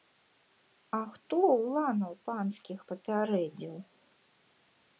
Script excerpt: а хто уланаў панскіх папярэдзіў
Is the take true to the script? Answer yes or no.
yes